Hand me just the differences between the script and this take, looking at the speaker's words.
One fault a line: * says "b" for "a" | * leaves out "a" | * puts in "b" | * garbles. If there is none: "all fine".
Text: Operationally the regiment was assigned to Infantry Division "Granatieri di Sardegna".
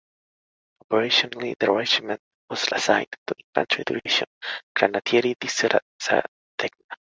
all fine